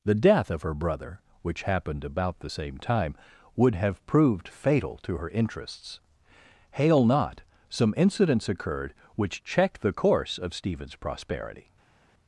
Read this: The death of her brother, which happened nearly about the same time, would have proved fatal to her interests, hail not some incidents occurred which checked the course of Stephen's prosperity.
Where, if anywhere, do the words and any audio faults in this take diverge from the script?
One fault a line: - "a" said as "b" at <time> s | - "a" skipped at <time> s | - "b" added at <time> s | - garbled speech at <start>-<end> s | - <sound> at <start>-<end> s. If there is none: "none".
- "nearly" skipped at 2.1 s